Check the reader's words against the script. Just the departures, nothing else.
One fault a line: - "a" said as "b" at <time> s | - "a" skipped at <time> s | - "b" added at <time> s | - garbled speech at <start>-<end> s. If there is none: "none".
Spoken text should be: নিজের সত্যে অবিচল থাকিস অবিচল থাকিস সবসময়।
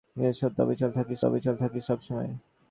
none